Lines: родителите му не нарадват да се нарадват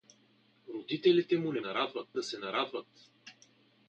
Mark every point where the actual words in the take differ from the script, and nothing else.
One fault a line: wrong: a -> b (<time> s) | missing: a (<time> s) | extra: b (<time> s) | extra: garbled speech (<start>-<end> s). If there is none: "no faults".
no faults